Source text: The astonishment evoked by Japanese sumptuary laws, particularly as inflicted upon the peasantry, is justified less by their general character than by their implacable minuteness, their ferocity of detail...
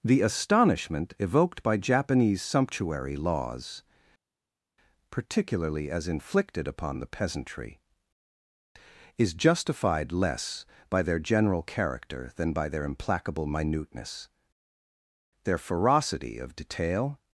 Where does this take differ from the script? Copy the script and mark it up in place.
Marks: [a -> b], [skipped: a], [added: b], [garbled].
The astonishment evoked by Japanese sumptuary laws, particularly as inflicted upon the peasantry, is justified less by their general character than by their implacable minuteness, their ferocity of detail...